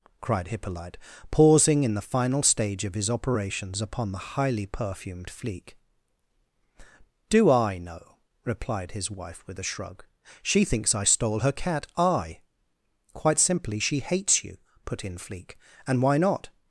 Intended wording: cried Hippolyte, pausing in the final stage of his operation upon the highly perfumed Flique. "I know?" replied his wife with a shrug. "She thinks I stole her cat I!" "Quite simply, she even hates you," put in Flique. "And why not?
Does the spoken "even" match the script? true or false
false